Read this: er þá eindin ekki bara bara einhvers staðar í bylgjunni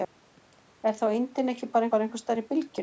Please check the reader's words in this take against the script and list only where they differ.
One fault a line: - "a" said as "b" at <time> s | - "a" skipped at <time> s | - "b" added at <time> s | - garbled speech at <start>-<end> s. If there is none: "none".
none